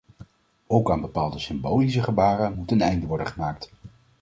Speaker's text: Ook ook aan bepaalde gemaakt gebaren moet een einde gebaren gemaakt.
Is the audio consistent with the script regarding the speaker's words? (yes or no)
no